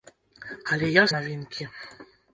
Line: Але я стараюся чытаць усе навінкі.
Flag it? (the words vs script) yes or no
yes